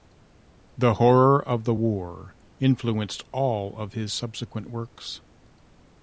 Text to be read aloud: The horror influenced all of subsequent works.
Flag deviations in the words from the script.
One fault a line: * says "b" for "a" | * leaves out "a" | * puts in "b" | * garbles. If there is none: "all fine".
* puts in "of the war"
* puts in "his"